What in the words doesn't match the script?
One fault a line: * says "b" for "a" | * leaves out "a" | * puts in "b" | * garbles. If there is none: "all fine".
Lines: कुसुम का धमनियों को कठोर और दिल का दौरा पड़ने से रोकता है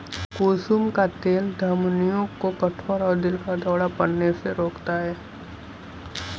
* puts in "तेल"